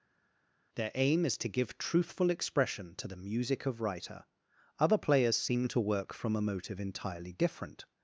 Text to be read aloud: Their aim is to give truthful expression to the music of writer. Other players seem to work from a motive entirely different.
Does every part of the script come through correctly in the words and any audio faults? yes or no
yes